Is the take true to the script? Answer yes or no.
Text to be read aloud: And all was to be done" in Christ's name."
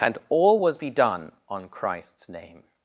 no